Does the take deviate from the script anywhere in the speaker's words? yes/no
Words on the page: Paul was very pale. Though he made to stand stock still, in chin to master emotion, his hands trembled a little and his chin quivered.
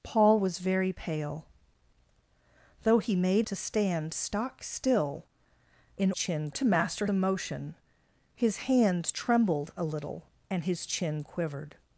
no